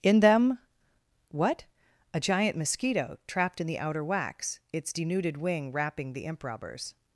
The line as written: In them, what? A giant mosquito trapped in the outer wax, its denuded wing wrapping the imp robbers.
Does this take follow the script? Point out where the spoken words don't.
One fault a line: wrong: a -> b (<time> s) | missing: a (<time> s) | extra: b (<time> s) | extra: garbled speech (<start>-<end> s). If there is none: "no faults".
no faults